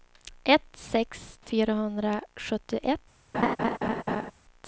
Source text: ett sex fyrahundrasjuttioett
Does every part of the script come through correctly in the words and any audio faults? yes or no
no